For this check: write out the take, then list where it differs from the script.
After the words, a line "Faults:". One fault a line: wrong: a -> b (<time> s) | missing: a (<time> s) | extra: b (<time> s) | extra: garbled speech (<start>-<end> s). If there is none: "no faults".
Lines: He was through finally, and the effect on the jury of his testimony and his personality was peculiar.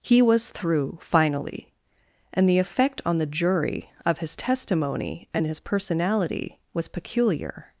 He was through finally, and the effect on the jury of his testimony and his personality was peculiar.
Faults:
no faults